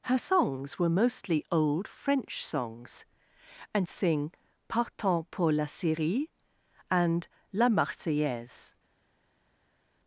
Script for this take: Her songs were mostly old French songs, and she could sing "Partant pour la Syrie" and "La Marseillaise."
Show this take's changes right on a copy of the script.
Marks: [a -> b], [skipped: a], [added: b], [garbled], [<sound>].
Her songs were mostly old French songs, and [skipped: she could] sing "Partant pour la Syrie" and "La Marseillaise."